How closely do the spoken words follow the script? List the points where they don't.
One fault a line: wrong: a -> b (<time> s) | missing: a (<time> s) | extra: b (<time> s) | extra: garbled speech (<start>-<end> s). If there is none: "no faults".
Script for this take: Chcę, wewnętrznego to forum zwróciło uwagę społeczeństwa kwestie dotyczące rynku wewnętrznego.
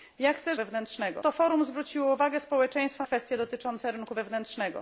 no faults